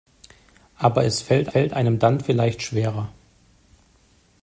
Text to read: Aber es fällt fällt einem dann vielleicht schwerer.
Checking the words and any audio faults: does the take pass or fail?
pass